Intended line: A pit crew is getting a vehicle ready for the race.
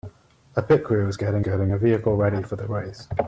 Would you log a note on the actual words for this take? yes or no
yes